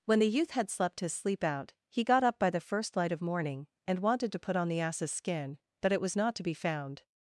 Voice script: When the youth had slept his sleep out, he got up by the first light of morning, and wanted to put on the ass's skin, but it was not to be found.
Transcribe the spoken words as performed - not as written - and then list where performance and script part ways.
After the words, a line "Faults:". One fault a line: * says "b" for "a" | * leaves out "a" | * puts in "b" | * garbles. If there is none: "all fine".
When the youth had slept his sleep out, he got up by the first light of morning, and wanted to put on the ass's skin, but it was not to be found.
Faults:
all fine